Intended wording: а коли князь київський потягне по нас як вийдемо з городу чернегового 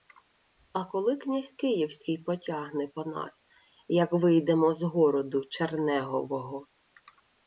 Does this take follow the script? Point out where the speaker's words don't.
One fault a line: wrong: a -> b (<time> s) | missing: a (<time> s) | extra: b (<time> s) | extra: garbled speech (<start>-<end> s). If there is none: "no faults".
no faults